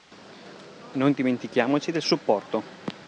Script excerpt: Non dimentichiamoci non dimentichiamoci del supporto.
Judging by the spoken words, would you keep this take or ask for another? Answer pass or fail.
fail